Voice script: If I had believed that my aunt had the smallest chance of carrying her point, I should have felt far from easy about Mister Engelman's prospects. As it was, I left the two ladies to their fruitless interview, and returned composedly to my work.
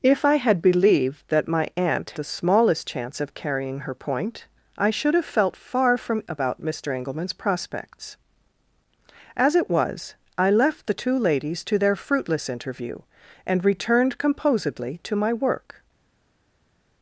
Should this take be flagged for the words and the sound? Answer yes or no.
yes